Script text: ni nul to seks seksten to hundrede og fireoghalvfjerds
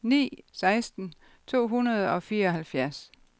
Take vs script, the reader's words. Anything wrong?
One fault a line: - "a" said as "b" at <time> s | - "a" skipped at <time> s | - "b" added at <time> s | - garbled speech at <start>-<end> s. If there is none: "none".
- "nul to seks" skipped at 0.4 s